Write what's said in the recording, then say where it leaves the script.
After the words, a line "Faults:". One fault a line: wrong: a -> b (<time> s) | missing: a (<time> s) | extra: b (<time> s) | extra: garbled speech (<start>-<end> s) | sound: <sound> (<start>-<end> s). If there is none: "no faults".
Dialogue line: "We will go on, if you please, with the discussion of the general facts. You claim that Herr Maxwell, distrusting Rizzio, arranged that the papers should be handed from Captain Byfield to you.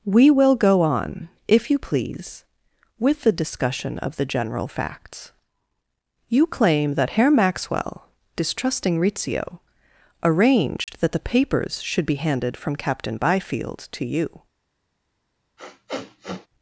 "We will go on, if you please, with the discussion of the general facts. You claim that Herr Maxwell, distrusting Rizzio, arranged that the papers should be handed from Captain Byfield to you.
Faults:
sound: dropout (10.8-10.9 s)
sound: sniff (15.6-16.5 s)